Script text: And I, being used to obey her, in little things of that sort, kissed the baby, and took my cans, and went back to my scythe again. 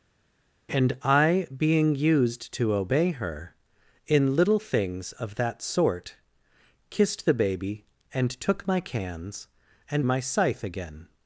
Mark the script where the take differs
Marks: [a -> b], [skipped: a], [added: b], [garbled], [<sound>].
And I, being used to obey her, in little things of that sort, kissed the baby, and took my cans, and [skipped: went back to] my scythe again.